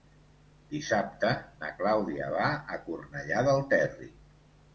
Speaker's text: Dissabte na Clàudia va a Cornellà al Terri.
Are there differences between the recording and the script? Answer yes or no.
yes